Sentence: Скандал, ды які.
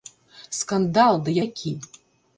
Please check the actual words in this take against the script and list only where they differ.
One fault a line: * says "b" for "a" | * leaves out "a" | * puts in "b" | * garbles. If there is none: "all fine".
all fine